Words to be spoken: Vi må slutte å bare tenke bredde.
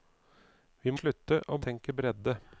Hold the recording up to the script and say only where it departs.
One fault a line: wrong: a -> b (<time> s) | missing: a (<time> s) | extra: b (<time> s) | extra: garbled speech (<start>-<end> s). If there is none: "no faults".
missing: må (0.9 s)
missing: bare (1.6 s)